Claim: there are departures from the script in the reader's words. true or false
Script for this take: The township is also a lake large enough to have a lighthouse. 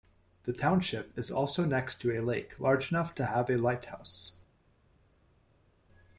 true